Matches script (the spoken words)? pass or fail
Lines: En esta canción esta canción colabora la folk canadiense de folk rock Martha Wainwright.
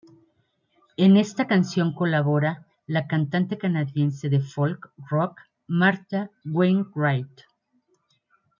fail